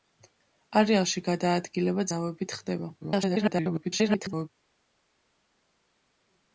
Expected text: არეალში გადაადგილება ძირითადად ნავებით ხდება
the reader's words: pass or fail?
fail